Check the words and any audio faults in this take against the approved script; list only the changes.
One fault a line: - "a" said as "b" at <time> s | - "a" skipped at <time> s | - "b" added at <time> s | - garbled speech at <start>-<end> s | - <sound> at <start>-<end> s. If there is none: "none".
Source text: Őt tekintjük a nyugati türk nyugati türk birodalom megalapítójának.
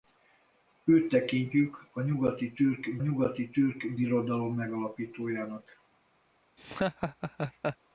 - laugh at 6.6-7.8 s